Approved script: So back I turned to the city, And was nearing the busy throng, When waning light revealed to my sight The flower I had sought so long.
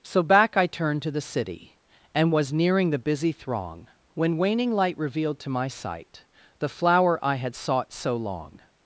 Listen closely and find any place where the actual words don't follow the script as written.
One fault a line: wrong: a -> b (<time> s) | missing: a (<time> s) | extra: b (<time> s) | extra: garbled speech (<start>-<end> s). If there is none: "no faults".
no faults